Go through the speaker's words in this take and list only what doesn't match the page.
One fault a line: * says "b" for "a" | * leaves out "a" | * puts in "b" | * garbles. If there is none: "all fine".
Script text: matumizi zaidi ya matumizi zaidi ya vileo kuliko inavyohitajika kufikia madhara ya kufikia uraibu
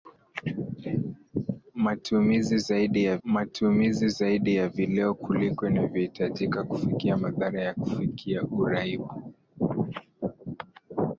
all fine